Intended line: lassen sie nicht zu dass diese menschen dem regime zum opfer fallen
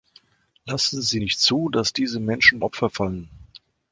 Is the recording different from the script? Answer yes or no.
yes